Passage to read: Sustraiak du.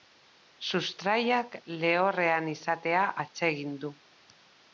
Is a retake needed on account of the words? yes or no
yes